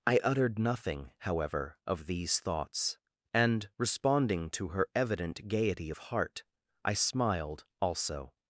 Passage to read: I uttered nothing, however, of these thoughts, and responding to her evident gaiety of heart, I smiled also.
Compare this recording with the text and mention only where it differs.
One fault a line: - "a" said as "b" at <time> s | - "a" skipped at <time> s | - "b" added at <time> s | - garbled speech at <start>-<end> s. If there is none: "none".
none